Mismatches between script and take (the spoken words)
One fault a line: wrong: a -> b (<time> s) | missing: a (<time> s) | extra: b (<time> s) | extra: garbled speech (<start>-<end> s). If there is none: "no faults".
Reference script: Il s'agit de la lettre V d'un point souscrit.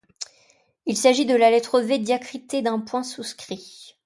extra: diacritée (2.0 s)